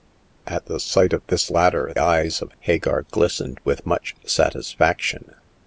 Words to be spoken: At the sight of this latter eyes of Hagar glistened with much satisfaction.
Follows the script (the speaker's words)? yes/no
yes